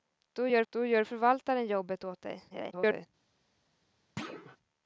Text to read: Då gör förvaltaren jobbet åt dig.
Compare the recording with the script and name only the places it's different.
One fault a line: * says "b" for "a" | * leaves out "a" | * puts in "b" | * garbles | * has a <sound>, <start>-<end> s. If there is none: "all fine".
* puts in "då gör"
* garbles
* has a thud, 4.2-4.6 s